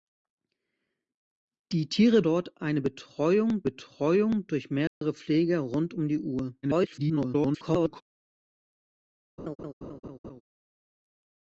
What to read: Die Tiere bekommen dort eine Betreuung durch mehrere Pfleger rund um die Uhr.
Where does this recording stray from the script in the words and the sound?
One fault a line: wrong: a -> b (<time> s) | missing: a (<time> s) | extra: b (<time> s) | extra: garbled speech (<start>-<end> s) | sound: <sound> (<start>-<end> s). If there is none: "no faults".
missing: bekommen (2.2 s)
extra: Betreuung (3.6 s)
sound: dropout (4.9-5.0 s)
extra: garbled speech (6.6-8.0 s)
sound: laugh (9.4-10.4 s)